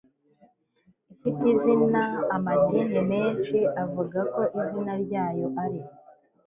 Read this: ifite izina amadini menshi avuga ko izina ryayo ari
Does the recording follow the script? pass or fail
pass